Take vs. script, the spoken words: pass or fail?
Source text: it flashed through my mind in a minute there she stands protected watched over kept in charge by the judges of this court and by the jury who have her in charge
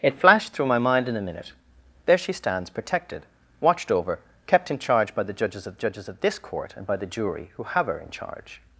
fail